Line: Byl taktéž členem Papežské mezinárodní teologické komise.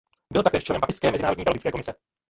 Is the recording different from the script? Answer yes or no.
no